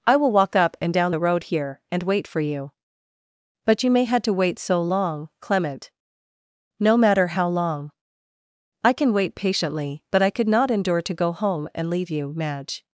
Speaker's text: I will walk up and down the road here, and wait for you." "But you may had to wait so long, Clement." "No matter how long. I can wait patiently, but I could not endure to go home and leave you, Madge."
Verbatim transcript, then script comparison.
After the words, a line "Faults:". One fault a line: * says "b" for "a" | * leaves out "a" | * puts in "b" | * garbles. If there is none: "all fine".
I will walk up and down the road here, and wait for you." "But you may had to wait so long, Clement." "No matter how long. I can wait patiently, but I could not endure to go home and leave you, Madge."
Faults:
all fine